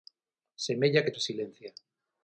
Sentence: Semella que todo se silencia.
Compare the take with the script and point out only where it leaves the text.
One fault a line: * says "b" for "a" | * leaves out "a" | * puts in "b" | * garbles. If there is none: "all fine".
* leaves out "todo"